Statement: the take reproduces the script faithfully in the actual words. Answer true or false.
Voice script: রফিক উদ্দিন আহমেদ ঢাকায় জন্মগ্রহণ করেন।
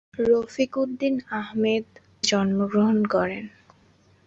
false